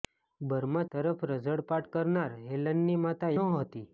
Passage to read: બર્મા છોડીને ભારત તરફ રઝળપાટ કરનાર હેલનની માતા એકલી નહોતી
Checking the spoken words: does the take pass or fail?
fail